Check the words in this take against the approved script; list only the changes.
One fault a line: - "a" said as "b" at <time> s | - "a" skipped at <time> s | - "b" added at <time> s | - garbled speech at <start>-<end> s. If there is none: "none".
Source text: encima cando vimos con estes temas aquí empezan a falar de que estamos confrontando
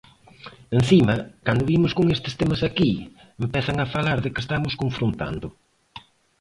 none